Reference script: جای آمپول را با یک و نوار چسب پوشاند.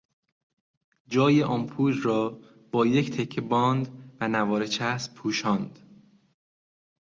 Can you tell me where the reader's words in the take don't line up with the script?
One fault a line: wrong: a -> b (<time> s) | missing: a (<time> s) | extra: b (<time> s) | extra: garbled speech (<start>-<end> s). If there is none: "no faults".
extra: تکه باند (3.1 s)